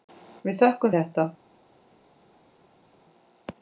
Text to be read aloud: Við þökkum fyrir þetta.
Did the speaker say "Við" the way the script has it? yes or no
yes